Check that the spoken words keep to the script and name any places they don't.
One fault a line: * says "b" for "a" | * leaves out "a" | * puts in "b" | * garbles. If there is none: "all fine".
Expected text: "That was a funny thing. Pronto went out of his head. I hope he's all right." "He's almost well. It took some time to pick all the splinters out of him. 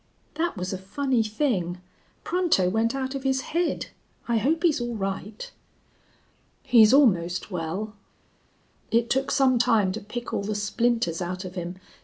all fine